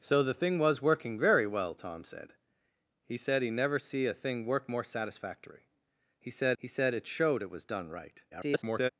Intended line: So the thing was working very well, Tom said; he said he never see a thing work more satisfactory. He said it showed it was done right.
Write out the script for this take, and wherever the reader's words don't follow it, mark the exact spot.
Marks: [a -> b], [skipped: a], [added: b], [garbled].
So the thing was working very well, Tom said; he said he never see a thing work more satisfactory. He said [added: he said] it showed it was done right. [garbled]